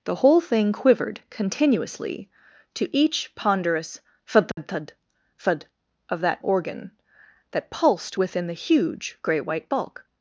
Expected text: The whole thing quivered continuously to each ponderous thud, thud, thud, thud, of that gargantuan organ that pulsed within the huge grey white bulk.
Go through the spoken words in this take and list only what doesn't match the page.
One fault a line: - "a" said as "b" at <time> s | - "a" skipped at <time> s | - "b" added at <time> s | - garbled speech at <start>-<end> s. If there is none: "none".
- "gargantuan" skipped at 6.4 s